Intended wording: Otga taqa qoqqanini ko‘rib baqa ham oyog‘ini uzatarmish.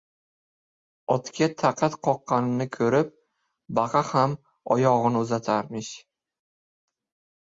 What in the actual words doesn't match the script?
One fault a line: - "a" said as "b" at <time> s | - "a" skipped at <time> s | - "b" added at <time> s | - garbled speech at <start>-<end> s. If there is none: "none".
none